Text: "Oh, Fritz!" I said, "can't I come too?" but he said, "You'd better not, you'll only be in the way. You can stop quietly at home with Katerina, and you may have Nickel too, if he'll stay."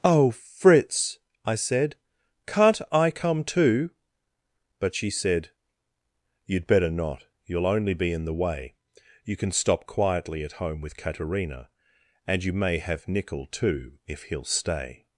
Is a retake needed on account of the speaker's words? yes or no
yes